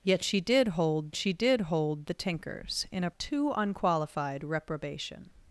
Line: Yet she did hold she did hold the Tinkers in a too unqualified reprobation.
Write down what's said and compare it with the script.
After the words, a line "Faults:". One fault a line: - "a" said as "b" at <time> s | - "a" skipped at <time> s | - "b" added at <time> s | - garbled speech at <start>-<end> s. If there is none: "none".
Yet she did hold she did hold the Tinkers in a too unqualified reprobation.
Faults:
none